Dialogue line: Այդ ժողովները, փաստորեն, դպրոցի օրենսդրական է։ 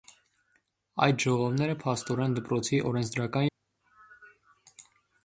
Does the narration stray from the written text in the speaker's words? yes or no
no